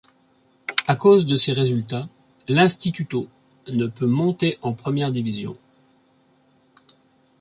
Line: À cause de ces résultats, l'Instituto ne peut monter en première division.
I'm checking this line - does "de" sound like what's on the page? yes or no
yes